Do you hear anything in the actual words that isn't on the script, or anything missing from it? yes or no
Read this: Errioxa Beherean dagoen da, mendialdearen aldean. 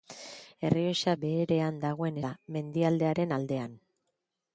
no